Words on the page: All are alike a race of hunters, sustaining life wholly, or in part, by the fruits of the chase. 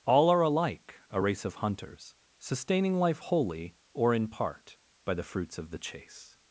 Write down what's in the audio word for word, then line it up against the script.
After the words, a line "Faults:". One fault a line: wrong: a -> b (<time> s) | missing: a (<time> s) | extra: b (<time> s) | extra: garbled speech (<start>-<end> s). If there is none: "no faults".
All are alike a race of hunters, sustaining life wholly, or in part, by the fruits of the chase.
Faults:
no faults